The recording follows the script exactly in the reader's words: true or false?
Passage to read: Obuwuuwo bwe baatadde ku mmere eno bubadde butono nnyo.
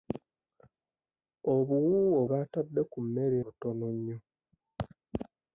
false